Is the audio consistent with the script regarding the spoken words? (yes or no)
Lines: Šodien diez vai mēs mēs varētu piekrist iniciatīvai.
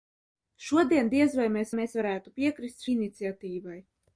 yes